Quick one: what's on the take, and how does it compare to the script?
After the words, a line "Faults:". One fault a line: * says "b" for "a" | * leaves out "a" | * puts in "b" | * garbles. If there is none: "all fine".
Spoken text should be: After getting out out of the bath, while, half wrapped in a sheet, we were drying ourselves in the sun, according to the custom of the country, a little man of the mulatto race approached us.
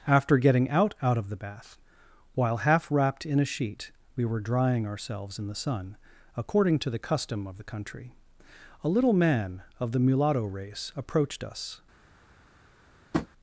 After getting out out of the bath, while, half wrapped in a sheet, we were drying ourselves in the sun, according to the custom of the country, a little man of the mulatto race approached us.
Faults:
all fine